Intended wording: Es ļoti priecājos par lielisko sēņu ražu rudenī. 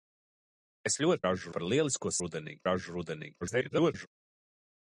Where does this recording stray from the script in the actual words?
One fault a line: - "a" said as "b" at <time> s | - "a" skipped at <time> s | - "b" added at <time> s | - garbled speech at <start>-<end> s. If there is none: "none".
- "priecājos" said as "ražu" at 1.3 s
- "sēņu" said as "rudenī" at 2.2 s
- garbled speech at 3.4-4.1 s